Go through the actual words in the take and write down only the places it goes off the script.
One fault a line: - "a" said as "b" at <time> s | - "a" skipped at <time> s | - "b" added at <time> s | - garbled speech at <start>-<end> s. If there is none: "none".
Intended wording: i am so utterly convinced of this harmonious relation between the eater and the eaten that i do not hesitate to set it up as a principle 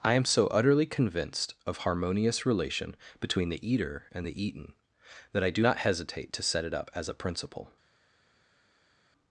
- "this" skipped at 1.8 s